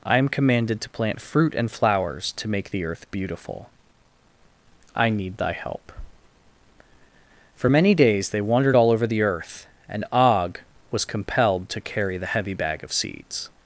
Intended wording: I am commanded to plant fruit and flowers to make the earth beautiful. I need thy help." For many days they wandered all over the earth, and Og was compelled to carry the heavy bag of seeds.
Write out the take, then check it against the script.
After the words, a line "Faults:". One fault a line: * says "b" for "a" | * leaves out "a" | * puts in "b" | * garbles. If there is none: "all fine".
I am commanded to plant fruit and flowers to make the earth beautiful. I need thy help." For many days they wandered all over the earth, and Og was compelled to carry the heavy bag of seeds.
Faults:
all fine